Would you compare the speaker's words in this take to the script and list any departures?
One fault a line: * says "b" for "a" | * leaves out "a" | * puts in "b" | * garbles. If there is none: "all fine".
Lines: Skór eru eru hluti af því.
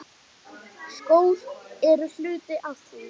* leaves out "eru"